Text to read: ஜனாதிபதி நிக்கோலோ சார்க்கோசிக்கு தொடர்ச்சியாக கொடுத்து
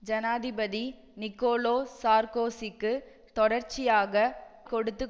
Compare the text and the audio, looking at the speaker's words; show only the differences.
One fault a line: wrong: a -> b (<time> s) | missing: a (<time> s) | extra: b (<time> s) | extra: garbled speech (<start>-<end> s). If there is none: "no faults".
no faults